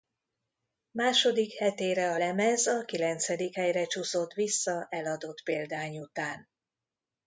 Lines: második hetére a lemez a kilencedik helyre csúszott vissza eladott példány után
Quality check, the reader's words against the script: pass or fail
pass